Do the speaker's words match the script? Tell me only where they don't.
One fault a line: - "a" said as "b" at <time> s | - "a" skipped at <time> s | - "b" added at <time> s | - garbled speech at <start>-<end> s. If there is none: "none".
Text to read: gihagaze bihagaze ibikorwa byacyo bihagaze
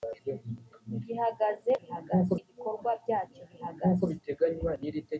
none